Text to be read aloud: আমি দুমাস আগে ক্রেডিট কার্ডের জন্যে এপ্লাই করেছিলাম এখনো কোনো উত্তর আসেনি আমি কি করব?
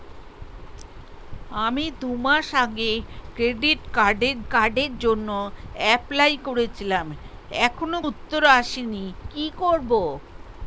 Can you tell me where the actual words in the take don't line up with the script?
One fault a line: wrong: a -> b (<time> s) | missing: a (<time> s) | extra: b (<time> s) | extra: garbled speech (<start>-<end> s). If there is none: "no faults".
extra: কার্ডের (4.5 s)
missing: কোনো (8.0 s)
missing: আমি (9.1 s)